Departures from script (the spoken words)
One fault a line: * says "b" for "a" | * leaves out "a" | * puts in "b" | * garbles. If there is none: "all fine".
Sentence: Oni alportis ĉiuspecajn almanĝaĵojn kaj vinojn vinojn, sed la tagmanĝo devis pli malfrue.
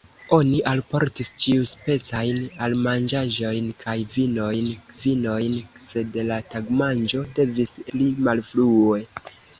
all fine